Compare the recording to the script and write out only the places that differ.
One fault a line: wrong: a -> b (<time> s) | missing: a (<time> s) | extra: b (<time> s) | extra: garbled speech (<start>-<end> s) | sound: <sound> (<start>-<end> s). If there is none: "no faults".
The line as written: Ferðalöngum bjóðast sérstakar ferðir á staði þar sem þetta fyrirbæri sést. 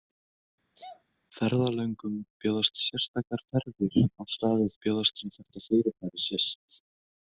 sound: sneeze (0.7-1.0 s)
wrong: þar -> bjóðast (4.8 s)